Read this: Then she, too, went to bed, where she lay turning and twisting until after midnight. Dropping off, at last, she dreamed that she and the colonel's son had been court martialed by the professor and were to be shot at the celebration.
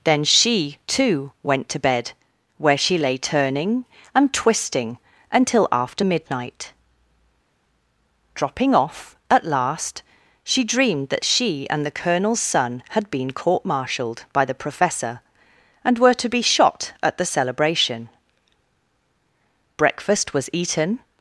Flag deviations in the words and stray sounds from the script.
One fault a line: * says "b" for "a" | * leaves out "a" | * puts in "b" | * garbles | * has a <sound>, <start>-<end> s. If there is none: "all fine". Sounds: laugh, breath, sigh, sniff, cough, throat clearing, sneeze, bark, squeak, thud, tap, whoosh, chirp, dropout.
* puts in "Breakfast was eaten"